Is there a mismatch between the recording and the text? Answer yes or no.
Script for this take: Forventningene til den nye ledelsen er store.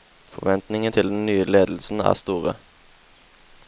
no